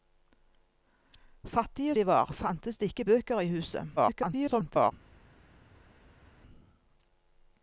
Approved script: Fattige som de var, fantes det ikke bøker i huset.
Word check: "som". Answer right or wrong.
wrong